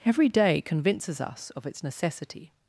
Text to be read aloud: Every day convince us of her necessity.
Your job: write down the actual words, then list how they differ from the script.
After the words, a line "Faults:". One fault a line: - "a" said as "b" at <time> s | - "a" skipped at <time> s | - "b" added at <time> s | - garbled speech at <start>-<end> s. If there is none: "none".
Every day convinces us of its necessity.
Faults:
- "convince" said as "convinces" at 0.6 s
- "her" said as "its" at 1.7 s